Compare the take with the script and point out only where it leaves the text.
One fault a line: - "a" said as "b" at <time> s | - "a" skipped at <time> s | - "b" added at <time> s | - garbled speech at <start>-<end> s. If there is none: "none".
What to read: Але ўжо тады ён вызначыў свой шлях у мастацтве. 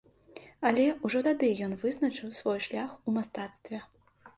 none